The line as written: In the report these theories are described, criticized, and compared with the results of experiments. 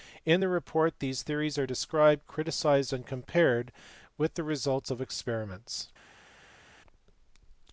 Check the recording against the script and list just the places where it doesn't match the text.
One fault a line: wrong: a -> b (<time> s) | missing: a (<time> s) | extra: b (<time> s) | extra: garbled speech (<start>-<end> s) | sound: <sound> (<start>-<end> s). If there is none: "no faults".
no faults